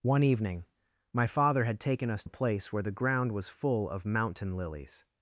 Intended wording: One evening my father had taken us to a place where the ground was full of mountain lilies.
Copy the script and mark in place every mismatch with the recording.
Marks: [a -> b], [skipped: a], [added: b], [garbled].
One evening my father had taken us [skipped: to] a place where the ground was full of mountain lilies.